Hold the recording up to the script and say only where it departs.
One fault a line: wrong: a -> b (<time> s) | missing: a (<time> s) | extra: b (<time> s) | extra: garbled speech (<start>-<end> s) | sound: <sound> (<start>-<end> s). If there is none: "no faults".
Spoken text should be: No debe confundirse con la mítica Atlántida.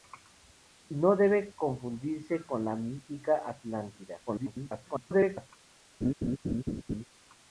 extra: garbled speech (4.3-5.5 s)
sound: laugh (6.0-7.0 s)